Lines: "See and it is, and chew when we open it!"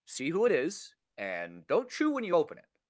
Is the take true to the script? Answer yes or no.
no